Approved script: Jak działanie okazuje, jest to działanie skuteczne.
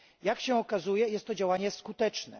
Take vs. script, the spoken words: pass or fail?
fail